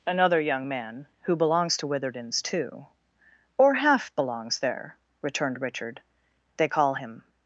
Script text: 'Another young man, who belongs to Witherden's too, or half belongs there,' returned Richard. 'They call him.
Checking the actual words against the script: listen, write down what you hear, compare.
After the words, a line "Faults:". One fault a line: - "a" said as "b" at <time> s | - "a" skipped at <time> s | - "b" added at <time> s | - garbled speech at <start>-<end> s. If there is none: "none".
'Another young man, who belongs to Witherden's too, or half belongs there,' returned Richard. 'They call him.
Faults:
none